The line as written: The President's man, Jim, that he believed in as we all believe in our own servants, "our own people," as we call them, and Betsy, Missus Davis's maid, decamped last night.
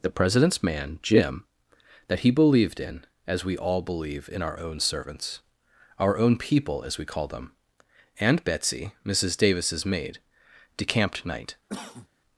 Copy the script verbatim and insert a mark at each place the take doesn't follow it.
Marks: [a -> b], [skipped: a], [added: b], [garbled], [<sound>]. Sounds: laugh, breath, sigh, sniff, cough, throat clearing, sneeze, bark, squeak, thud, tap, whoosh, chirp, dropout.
The President's man, Jim, that he believed in as we all believe in our own servants, "our own people," as we call them, and Betsy, Missus Davis's maid, decamped [skipped: last] night. [cough]